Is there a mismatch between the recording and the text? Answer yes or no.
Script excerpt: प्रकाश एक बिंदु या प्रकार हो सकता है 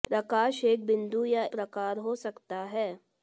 no